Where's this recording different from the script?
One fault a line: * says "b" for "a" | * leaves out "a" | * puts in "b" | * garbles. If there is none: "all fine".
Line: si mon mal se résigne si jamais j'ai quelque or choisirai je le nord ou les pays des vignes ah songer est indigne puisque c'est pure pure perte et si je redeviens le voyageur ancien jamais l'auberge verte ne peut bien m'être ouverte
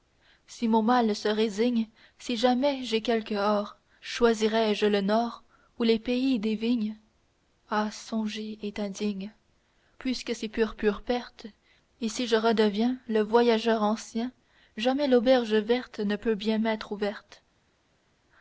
all fine